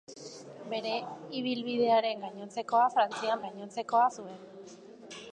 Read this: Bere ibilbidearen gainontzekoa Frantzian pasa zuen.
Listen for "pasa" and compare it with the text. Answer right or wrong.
wrong